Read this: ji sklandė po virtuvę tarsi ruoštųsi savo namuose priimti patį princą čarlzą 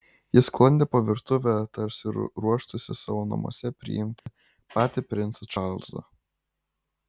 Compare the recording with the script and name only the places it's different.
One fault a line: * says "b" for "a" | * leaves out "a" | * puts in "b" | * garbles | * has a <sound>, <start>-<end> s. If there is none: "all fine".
* has a dropout, 4.2-4.3 s